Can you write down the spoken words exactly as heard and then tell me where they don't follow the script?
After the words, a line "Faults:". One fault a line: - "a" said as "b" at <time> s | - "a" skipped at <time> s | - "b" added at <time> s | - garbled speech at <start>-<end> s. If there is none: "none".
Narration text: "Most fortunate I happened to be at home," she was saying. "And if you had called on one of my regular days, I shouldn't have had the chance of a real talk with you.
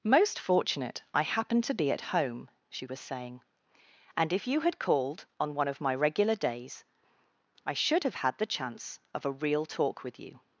"Most fortunate I happened to be at home," she was saying. "And if you had called on one of my regular days, I should have had the chance of a real talk with you.
Faults:
- "shouldn't" said as "should" at 7.7 s